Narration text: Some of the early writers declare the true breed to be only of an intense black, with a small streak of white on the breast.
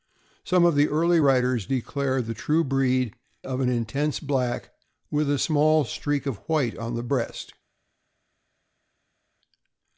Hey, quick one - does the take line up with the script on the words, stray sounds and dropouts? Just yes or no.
no